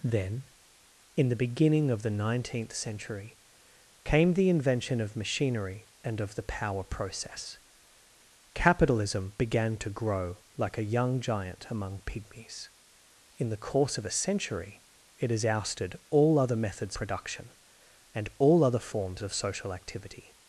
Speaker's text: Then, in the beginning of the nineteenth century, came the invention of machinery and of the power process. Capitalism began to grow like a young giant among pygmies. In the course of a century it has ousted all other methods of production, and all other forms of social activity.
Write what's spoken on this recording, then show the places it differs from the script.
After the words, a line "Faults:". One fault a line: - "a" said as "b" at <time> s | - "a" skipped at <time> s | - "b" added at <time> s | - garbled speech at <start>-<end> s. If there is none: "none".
Then, in the beginning of the nineteenth century, came the invention of machinery and of the power process. Capitalism began to grow like a young giant among pygmies. In the course of a century it has ousted all other methods production, and all other forms of social activity.
Faults:
- "of" skipped at 17.0 s